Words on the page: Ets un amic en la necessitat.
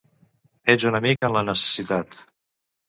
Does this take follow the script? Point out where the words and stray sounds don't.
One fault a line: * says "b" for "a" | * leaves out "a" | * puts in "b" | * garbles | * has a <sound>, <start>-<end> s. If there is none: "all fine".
* has a dropout, 1.2-1.2 s